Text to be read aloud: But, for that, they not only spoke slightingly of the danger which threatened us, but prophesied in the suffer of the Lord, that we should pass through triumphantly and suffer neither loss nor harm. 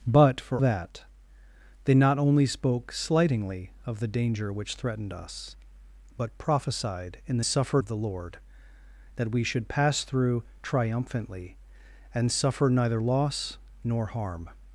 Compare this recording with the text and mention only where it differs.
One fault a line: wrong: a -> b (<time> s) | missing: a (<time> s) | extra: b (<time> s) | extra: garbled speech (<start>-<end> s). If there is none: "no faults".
no faults